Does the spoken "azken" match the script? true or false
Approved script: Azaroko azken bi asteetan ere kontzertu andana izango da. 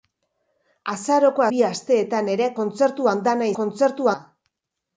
false